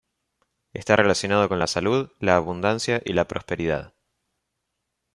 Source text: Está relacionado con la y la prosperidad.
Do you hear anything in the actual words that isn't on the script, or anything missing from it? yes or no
yes